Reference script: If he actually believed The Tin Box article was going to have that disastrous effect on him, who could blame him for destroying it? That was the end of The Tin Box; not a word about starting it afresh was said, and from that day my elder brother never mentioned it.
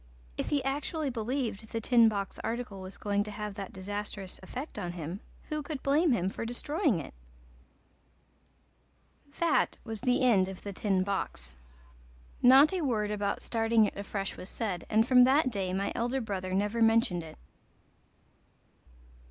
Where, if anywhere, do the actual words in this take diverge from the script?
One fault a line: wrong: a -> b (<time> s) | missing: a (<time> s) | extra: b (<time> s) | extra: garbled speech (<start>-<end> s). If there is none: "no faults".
no faults